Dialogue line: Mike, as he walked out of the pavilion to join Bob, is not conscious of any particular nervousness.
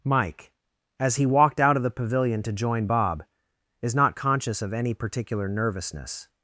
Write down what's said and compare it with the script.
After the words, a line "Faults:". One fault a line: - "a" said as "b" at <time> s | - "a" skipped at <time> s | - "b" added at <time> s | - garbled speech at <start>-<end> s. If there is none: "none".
Mike, as he walked out of the pavilion to join Bob, is not conscious of any particular nervousness.
Faults:
none